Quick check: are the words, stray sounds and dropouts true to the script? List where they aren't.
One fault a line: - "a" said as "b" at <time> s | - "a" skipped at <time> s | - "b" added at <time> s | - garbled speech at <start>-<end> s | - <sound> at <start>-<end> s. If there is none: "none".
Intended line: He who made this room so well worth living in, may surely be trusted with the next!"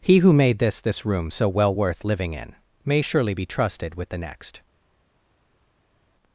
- "this" added at 0.8 s